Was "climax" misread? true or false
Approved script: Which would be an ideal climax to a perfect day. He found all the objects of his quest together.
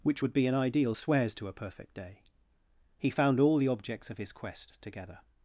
true